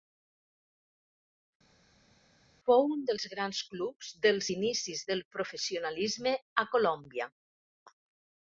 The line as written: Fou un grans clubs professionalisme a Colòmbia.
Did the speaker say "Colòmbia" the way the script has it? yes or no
yes